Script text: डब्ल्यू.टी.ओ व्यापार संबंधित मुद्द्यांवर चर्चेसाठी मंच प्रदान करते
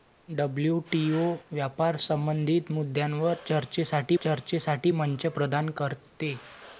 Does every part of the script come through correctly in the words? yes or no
no